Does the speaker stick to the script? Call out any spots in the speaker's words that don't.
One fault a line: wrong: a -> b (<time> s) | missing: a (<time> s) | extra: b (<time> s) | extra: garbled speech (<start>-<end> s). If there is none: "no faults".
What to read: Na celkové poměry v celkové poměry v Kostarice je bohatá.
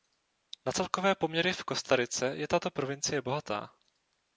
wrong: celkové poměry v Kostarice je -> Kostarice je tato provincie (1.6 s)